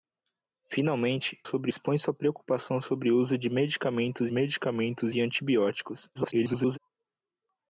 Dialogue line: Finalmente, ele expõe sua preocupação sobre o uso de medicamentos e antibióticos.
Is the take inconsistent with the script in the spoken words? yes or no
yes